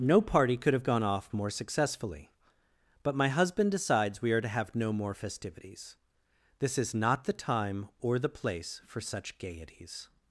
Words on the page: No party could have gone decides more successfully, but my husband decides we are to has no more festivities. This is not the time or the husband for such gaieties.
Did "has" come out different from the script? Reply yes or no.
yes